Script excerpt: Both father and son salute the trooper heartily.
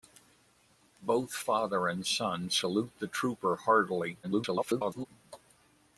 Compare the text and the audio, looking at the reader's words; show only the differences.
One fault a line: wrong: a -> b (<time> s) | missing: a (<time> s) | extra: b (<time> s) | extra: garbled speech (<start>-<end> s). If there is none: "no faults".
extra: garbled speech (4.2-5.1 s)